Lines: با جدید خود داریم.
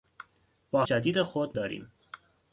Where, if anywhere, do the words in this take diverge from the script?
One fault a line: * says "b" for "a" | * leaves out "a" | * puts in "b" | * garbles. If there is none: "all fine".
all fine